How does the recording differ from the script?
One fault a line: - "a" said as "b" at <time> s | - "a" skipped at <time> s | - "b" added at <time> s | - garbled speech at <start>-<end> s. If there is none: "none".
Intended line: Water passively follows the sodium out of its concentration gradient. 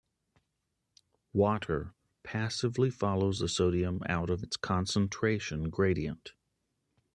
none